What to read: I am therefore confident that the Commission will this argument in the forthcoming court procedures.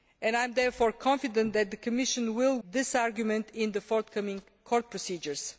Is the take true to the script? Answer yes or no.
yes